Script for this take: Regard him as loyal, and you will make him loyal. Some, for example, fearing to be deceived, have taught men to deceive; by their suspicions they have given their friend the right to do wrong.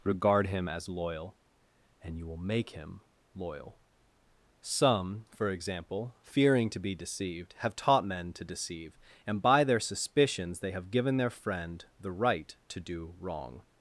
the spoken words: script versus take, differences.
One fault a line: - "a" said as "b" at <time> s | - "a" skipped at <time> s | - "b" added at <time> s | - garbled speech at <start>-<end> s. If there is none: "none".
- "and" added at 9.2 s